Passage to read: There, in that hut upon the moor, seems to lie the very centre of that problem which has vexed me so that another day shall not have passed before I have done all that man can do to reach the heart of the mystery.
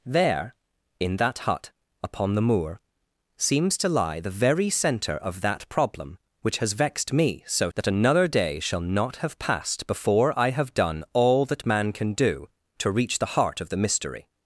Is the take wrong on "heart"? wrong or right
right